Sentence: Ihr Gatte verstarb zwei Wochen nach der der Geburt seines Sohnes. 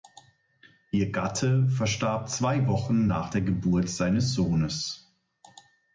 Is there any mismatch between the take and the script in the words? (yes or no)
yes